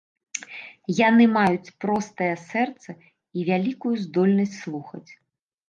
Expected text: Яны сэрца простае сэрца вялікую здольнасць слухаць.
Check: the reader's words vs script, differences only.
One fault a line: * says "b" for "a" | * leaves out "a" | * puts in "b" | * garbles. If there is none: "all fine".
* says "маюць" for "сэрца"
* puts in "і"